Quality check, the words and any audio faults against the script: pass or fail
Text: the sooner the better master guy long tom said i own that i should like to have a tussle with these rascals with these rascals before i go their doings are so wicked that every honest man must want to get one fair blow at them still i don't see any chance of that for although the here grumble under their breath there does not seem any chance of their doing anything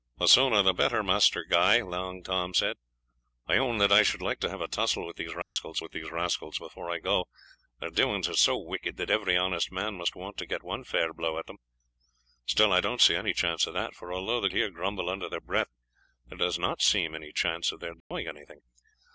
fail